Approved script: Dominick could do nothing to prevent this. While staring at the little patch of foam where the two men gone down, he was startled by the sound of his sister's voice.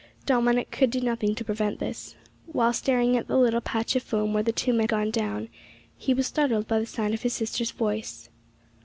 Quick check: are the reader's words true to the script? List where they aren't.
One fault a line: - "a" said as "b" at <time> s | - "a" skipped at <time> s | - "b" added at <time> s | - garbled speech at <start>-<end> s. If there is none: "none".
none